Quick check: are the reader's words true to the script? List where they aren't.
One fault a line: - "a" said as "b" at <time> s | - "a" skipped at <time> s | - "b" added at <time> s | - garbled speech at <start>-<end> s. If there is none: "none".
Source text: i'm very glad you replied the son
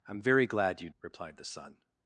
none